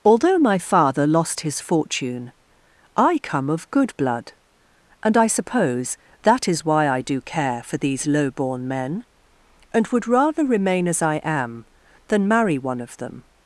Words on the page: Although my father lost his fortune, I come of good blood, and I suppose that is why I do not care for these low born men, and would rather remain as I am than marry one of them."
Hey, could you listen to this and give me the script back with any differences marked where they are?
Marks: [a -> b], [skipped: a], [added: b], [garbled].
Although my father lost his fortune, I come of good blood, and I suppose that is why I do [skipped: not] care for these low born men, and would rather remain as I am than marry one of them."